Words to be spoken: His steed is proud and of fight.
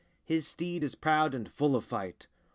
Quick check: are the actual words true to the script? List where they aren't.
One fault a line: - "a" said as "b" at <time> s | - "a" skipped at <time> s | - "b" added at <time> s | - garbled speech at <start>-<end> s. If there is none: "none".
- "full" added at 1.5 s